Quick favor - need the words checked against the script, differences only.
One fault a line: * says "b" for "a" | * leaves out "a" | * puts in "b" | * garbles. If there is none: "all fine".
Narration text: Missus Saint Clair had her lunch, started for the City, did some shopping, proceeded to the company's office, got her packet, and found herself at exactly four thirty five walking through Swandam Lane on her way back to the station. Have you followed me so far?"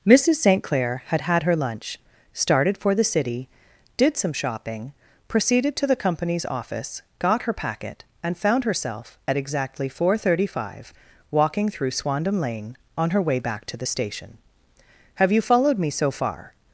* puts in "had"